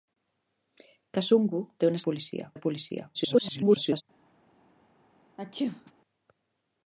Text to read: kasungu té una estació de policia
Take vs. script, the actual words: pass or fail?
fail